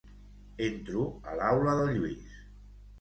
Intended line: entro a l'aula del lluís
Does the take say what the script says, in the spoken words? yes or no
yes